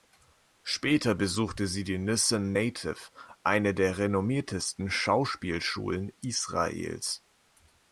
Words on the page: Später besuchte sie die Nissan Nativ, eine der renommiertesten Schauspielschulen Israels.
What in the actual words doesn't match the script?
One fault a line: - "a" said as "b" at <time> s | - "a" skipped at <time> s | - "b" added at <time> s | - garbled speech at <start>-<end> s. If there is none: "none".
none